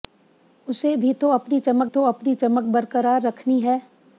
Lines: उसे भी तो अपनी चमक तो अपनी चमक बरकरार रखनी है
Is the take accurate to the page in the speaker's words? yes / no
yes